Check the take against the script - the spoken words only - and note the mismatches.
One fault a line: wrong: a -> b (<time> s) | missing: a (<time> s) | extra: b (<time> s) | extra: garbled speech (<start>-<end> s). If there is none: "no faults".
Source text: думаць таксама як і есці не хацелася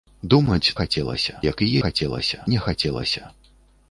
wrong: таксама -> хацелася (0.8 s)
wrong: есці -> хацелася (1.8 s)